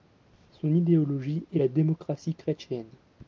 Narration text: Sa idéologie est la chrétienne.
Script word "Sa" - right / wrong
wrong